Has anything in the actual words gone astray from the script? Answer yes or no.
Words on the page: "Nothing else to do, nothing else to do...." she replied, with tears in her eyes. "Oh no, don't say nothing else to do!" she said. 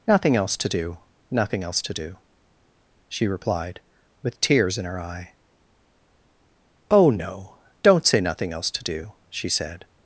yes